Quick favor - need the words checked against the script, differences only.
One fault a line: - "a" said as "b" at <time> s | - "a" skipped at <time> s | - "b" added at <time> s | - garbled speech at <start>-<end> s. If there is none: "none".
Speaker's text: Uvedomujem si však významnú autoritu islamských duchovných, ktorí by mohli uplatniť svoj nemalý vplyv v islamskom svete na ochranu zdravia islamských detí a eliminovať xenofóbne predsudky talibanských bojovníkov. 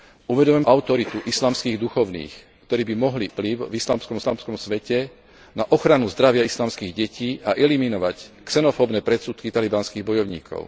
- "si však významnú" skipped at 0.6 s
- "uplatniť svoj nemalý" skipped at 3.3 s
- "islamskom" added at 4.2 s